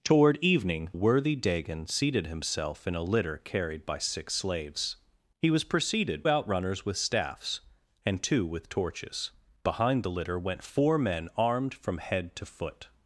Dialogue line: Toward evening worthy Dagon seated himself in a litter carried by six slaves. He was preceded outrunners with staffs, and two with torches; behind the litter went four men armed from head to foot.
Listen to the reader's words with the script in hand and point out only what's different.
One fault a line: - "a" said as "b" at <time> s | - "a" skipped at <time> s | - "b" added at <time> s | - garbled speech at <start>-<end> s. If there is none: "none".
none